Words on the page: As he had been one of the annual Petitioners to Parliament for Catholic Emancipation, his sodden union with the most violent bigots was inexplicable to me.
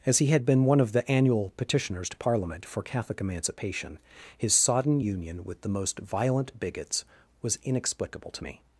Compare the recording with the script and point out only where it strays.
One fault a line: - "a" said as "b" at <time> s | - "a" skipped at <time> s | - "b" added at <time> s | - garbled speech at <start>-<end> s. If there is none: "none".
none